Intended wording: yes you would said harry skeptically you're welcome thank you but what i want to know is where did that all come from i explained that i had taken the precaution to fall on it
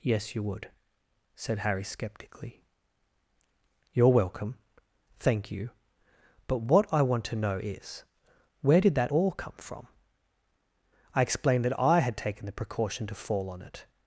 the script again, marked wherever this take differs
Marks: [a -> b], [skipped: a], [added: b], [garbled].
yes you would said harry skeptically you're welcome thank you but what i want to know is where did that all come from i explained that i had taken the precaution to fall on it